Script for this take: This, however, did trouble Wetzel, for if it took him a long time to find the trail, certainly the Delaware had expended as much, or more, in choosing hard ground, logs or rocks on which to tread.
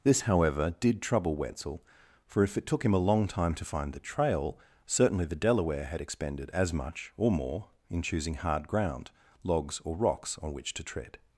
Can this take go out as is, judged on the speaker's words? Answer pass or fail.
pass